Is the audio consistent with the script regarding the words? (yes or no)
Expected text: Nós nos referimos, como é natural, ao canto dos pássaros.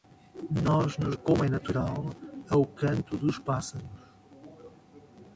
no